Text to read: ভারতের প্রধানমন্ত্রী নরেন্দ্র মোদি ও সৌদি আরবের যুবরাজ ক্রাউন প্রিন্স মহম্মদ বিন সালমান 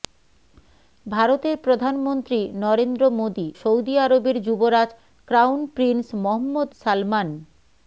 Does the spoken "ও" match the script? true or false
false